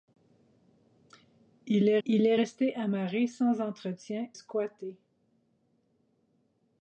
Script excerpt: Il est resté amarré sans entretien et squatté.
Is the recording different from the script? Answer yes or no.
yes